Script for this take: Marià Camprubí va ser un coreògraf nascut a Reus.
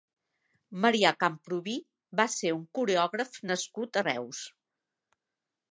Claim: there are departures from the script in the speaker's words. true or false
false